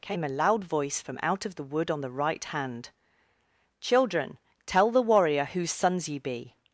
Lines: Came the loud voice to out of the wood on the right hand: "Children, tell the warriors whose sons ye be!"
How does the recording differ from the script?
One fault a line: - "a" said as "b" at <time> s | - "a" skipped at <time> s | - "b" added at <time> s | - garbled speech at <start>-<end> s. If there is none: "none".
- "the" said as "a" at 0.2 s
- "to" said as "from" at 1.0 s
- "warriors" said as "warrior" at 5.0 s